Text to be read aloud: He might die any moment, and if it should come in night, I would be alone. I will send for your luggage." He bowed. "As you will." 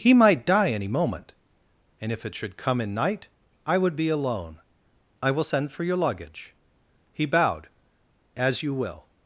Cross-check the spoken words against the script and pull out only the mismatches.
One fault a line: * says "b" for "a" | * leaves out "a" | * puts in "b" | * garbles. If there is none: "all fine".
all fine